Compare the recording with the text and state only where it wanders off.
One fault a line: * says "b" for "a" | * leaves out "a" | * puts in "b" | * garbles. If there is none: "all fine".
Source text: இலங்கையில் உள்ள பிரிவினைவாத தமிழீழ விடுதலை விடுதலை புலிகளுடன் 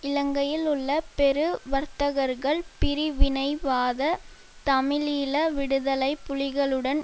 * puts in "பெரு வர்த்தகர்கள்"
* leaves out "விடுதலை"